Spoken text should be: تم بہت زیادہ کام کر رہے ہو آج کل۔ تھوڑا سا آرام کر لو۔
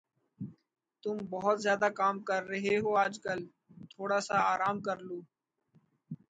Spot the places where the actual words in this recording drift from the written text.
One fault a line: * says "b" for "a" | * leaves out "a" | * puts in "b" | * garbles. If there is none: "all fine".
all fine